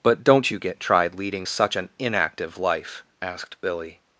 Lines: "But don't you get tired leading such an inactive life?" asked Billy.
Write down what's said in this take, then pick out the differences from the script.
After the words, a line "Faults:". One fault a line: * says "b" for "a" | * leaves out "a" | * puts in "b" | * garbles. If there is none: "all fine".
"But don't you get tried leading such an inactive life?" asked Billy.
Faults:
* says "tried" for "tired"